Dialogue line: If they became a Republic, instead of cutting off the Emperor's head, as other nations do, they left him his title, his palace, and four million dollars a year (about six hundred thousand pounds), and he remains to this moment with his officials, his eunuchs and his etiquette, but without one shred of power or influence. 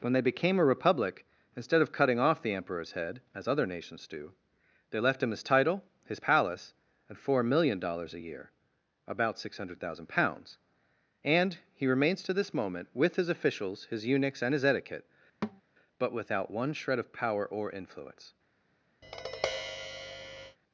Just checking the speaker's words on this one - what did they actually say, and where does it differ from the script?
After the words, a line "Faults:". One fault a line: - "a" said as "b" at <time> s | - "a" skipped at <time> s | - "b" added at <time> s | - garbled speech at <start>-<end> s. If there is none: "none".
When they became a Republic, instead of cutting off the Emperor's head, as other nations do, they left him his title, his palace, and four million dollars a year (about six hundred thousand pounds), and he remains to this moment with his officials, his eunuchs and his etiquette, but without one shred of power or influence.
Faults:
- "If" said as "When" at 0.0 s